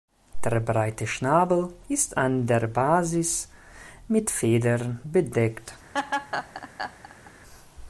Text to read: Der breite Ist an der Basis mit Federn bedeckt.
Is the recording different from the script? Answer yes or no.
yes